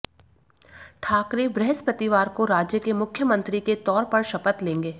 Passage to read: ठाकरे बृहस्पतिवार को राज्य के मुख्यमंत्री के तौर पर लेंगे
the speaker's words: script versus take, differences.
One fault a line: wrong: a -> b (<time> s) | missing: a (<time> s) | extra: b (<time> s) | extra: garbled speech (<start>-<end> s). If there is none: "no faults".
extra: शपथ (4.2 s)